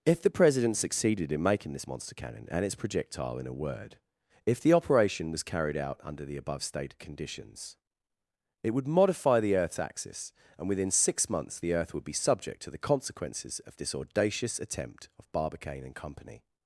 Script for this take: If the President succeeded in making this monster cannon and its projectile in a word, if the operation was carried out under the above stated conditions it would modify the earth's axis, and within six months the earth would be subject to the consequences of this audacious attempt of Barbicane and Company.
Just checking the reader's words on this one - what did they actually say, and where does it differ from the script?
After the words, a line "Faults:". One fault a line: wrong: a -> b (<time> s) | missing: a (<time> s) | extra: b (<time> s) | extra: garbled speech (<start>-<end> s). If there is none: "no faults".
If the President succeeded in making this monster cannon and its projectile in a word, if the operation was carried out under the above stated conditions it would modify the earth's axis, and within six months the earth would be subject to the consequences of this audacious attempt of Barbicane and Company.
Faults:
no faults